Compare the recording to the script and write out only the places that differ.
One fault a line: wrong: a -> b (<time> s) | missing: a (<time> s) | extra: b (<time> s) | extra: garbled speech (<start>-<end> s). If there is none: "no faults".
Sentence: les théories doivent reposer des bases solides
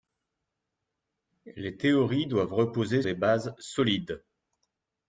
no faults